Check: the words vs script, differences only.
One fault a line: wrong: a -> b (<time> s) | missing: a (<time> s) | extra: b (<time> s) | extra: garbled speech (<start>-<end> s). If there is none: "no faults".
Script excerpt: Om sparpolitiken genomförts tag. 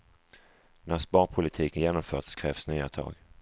wrong: Om -> När (0.8 s)
extra: krävs nya (2.3 s)